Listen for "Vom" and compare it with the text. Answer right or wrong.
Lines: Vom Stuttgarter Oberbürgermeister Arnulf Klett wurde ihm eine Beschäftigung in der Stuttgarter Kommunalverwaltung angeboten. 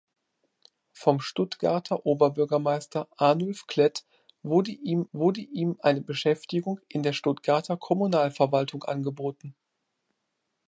right